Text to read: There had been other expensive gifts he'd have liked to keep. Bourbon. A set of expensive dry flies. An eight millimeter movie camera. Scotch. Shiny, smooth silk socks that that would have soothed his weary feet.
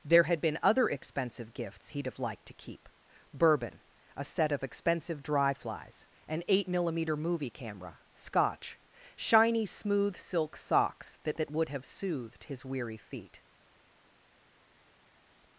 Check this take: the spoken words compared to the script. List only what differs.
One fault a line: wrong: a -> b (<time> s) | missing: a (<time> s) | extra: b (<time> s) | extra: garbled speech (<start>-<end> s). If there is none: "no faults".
no faults